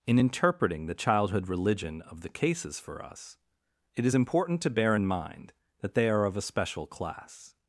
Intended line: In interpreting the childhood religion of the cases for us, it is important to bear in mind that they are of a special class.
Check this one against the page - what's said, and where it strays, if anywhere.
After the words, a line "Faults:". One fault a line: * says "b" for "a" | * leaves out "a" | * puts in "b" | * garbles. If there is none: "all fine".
In interpreting the childhood religion of the cases for us, it is important to bear in mind that they are of a special class.
Faults:
all fine